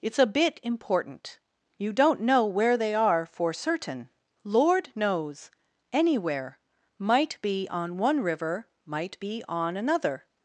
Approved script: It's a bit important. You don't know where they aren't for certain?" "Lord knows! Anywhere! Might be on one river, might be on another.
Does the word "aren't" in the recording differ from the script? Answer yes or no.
yes